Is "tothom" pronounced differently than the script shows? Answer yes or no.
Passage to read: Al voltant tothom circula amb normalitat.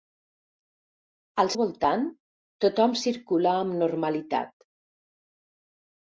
no